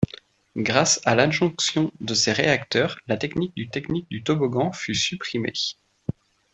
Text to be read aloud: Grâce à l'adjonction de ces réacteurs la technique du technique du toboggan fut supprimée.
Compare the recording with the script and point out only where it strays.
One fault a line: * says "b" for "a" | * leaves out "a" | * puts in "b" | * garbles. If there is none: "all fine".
all fine